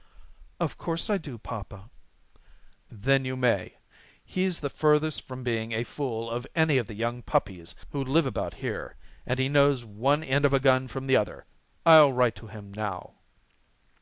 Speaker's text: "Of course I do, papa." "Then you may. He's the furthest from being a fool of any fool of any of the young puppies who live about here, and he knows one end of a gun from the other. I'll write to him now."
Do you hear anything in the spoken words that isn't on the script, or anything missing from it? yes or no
yes